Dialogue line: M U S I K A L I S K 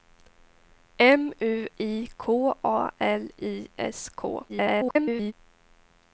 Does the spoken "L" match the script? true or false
true